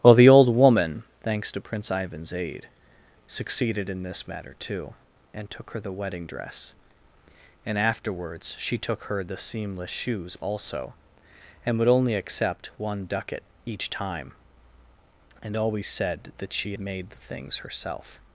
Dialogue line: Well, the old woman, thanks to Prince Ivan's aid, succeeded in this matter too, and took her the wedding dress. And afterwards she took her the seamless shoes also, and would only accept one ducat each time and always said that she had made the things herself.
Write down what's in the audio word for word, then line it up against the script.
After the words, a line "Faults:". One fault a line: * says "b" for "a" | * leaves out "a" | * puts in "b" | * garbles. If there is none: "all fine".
Well, the old woman, thanks to Prince Ivan's aid, succeeded in this matter too, and took her the wedding dress. And afterwards she took her the seamless shoes also, and would only accept one ducat each time and always said that she made the things herself.
Faults:
* leaves out "had"